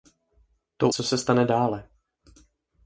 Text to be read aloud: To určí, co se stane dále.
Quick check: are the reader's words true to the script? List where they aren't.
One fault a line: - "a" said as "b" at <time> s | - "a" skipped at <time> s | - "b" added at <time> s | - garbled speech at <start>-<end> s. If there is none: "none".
- "určí" skipped at 0.9 s